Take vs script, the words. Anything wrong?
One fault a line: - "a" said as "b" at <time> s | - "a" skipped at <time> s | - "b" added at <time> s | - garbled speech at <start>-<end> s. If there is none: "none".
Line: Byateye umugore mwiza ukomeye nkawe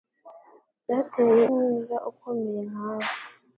- "umugore" skipped at 1.4 s